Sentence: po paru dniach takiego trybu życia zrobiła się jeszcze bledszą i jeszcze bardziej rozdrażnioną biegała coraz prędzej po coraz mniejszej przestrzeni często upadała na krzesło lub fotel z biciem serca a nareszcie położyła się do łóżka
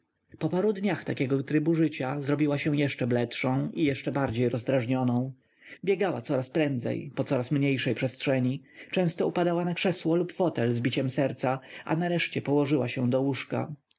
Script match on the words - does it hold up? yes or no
yes